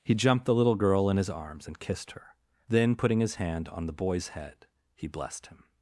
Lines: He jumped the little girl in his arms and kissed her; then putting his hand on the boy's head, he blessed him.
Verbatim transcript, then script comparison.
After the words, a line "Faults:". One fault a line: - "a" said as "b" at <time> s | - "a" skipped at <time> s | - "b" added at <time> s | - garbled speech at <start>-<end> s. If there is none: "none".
He jumped the little girl in his arms and kissed her; then putting his hand on the boy's head, he blessed him.
Faults:
none